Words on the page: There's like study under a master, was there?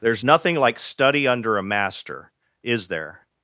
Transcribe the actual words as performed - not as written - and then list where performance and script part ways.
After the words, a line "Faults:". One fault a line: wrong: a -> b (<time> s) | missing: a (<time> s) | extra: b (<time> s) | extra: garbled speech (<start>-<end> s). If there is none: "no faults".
There's nothing like study under a master, is there?
Faults:
extra: nothing (0.2 s)
wrong: was -> is (2.6 s)